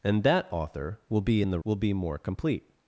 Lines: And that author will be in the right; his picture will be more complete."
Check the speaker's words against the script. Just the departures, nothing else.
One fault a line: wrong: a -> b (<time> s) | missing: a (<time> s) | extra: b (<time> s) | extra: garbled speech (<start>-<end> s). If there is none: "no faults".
missing: right his picture (1.6 s)